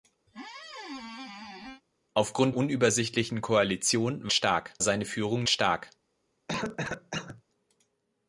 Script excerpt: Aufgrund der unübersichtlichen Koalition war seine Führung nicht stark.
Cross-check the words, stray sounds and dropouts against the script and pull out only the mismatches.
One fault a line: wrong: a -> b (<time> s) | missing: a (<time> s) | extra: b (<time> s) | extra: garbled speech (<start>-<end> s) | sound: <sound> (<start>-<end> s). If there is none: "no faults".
sound: squeak (0.3-1.8 s)
missing: der (2.5 s)
wrong: war -> stark (4.3 s)
missing: nicht (5.5 s)
sound: cough (6.5-7.4 s)